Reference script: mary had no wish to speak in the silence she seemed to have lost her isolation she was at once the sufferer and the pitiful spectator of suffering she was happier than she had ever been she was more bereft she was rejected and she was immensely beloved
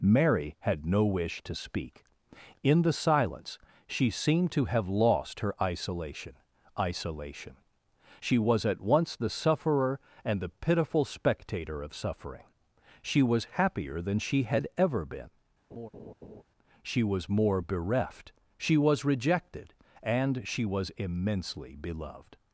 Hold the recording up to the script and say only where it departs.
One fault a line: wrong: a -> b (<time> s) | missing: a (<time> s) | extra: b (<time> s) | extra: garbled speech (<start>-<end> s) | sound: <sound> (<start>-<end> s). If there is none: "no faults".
extra: isolation (6.8 s)
sound: laugh (15.7-16.4 s)